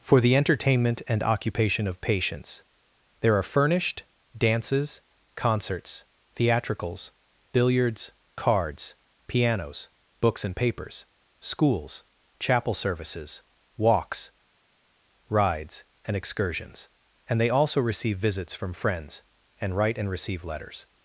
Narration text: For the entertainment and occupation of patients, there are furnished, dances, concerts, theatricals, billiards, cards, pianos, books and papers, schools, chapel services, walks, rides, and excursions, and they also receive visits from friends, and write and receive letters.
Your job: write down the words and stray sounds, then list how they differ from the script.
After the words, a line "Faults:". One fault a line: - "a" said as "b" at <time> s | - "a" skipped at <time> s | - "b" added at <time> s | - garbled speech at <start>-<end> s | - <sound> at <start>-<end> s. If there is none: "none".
For the entertainment and occupation of patients, there are furnished, dances, concerts, theatricals, billiards, cards, pianos, books and papers, schools, chapel services, walks, rides, and excursions, and they also receive visits from friends, and write and receive letters.
Faults:
none